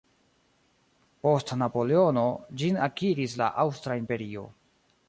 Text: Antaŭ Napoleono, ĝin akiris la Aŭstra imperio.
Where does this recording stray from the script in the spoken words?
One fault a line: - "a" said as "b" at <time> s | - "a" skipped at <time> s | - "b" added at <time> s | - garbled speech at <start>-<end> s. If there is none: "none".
- "Antaŭ" said as "Post" at 1.2 s